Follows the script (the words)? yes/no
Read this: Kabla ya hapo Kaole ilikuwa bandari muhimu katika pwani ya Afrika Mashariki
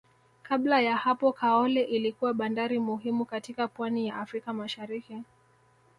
yes